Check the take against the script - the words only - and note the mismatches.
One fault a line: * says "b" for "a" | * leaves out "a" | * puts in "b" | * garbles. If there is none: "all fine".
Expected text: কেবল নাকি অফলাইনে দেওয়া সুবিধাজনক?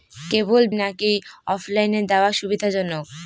all fine